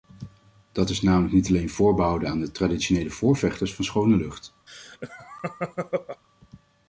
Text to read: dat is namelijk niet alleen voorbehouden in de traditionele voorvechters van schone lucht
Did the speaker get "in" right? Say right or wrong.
wrong